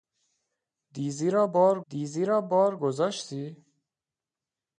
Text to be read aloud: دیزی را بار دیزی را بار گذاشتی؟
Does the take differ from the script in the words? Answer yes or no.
no